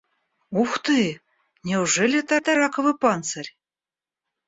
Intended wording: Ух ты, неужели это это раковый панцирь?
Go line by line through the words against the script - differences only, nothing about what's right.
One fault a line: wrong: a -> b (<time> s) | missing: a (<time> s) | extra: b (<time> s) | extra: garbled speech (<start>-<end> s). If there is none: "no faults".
no faults